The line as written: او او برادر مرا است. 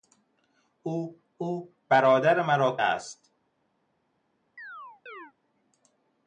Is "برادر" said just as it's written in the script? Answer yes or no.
yes